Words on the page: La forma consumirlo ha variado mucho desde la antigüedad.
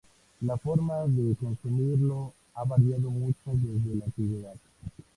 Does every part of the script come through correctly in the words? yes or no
no